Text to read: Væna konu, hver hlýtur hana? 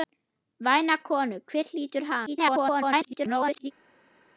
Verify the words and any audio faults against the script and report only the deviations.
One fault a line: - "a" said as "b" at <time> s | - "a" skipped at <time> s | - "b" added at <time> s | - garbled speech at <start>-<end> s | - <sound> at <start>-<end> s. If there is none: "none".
- garbled speech at 2.3-3.7 s